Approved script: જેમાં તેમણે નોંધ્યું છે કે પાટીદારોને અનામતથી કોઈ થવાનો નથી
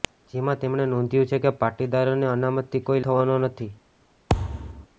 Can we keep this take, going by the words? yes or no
yes